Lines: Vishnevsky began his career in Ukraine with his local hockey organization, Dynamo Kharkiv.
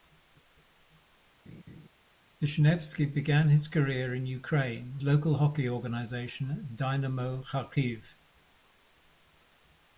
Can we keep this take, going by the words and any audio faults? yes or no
no